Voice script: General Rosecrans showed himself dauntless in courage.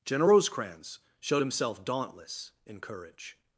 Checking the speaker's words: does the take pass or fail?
pass